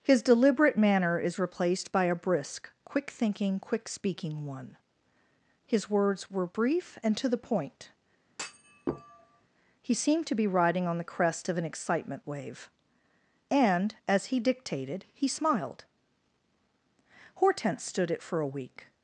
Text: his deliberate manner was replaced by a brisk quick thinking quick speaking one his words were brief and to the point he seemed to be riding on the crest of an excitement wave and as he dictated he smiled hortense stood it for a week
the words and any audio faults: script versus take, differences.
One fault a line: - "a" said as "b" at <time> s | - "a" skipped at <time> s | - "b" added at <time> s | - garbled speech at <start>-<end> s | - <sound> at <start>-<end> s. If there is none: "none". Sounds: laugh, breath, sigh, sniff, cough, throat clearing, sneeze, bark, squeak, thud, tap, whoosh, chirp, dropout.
- "was" said as "is" at 1.2 s
- thud at 8.3-9.5 s